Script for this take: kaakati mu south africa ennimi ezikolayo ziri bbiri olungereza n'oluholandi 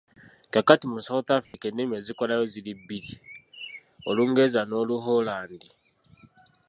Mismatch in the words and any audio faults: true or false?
true